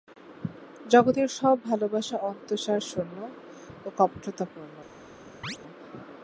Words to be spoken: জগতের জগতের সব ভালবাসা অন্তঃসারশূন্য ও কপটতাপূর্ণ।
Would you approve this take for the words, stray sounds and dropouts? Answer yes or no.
no